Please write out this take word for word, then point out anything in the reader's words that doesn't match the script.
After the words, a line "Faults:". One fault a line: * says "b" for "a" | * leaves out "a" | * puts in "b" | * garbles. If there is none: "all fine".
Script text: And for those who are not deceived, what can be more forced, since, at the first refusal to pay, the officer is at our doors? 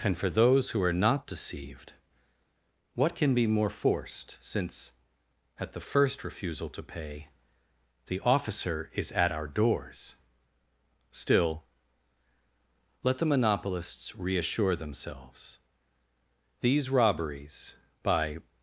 And for those who are not deceived, what can be more forced, since, at the first refusal to pay, the officer is at our doors? Still, let the monopolists reassure themselves. These robberies, by
Faults:
* puts in "Still let the monopolists reassure themselves These robberies by"